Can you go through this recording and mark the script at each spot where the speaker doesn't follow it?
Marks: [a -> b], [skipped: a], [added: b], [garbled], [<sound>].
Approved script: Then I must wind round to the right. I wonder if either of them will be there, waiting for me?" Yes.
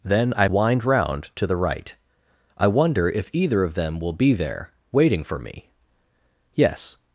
Then I [skipped: must] wind round to the right. I wonder if either of them will be there, waiting for me?" Yes.